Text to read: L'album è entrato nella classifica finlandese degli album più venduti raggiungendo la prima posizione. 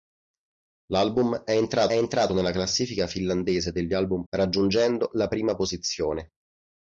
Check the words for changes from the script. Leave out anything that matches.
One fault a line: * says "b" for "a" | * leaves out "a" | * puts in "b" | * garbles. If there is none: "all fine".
* puts in "entrato"
* leaves out "più venduti"